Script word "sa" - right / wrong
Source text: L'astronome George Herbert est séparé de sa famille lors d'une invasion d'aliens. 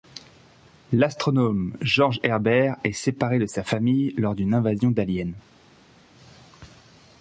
right